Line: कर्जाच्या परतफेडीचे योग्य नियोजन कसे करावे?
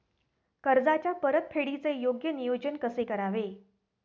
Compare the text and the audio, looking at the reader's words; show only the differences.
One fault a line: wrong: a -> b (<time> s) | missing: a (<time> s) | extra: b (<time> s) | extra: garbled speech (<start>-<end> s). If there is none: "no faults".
no faults